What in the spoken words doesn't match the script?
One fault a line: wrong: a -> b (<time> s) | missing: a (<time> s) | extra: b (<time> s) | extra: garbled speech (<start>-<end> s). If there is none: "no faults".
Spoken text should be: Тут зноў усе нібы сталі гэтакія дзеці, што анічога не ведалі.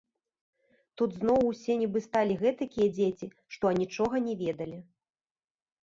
no faults